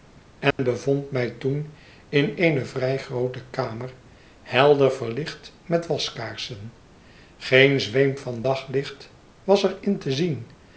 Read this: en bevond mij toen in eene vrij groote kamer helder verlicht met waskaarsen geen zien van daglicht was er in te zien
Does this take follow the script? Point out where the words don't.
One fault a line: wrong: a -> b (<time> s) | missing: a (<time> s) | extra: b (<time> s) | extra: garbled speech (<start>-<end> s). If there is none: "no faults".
wrong: zien -> zweem (7.8 s)